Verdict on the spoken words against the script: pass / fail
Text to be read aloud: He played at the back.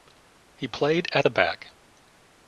pass